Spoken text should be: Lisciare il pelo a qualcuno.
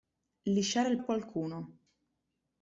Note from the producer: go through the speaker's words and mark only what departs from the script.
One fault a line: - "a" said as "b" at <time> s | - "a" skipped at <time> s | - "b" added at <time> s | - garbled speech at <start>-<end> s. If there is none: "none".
- "pelo" skipped at 1.0 s